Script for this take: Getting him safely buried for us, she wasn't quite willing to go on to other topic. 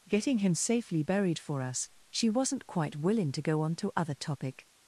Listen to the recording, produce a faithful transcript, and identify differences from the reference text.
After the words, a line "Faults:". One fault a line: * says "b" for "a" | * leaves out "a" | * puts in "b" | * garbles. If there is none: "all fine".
Getting him safely buried for us, she wasn't quite willing to go on to other topic.
Faults:
all fine